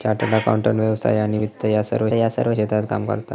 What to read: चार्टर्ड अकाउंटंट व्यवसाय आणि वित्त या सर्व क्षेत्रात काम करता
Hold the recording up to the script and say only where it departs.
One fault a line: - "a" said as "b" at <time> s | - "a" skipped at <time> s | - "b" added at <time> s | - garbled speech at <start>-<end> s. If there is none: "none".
- "या सर्व" added at 2.1 s